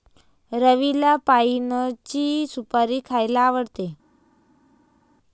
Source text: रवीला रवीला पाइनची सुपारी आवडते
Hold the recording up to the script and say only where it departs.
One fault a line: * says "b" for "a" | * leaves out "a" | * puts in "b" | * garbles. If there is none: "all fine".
* leaves out "रवीला"
* puts in "खायला"